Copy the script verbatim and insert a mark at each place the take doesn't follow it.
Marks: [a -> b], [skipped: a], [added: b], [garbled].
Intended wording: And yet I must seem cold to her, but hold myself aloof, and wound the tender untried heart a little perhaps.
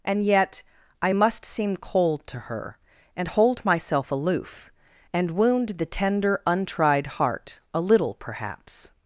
And yet I must seem cold to her, [but -> and] hold myself aloof, and wound the tender untried heart a little perhaps.